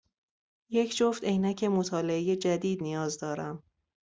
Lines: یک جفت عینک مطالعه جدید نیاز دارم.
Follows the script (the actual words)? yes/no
yes